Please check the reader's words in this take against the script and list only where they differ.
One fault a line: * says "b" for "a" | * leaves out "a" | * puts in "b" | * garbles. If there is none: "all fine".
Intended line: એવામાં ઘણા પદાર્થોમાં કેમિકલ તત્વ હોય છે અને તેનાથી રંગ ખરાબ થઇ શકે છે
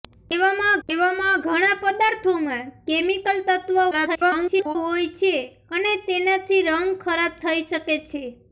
* puts in "એવામાં"
* garbles